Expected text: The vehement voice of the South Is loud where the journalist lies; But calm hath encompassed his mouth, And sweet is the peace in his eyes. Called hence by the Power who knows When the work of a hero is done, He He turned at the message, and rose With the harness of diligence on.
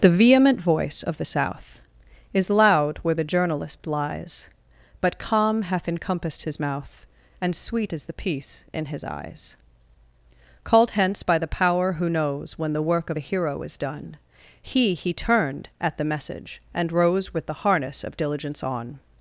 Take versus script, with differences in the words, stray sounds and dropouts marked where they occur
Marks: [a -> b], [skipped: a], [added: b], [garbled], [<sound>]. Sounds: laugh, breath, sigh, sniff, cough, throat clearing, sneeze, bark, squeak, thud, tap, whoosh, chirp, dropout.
The vehement voice of the South Is loud where the journalist lies; But calm hath encompassed his mouth, And sweet is the peace in his eyes. Called hence by the Power who knows When the work of a hero is done, He He turned at the message, and rose With the harness of diligence on.